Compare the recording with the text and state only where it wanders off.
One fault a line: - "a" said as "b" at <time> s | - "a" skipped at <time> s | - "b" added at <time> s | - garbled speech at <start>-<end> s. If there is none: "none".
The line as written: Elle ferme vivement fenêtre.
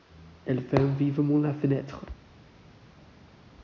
- "la" added at 1.4 s